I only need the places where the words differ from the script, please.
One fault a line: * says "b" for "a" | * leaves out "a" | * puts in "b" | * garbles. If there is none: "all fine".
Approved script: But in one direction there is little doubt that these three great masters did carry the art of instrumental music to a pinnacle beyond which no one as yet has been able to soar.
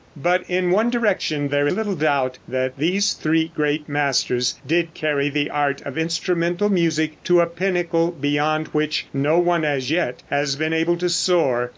* leaves out "is"